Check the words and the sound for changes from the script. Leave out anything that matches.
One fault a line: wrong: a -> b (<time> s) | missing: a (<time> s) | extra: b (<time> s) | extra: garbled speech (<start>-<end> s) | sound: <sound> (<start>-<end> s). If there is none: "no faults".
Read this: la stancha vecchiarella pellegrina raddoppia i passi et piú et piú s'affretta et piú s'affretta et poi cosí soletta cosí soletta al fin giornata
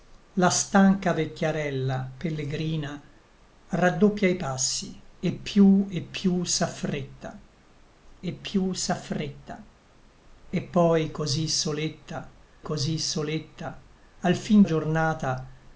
no faults